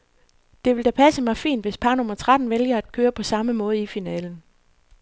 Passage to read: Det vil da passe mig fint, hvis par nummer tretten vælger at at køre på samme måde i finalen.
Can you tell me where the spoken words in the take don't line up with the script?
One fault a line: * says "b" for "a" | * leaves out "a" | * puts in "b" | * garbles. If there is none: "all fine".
all fine